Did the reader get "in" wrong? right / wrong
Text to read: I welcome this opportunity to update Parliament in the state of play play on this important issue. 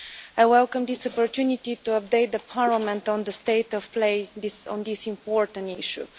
wrong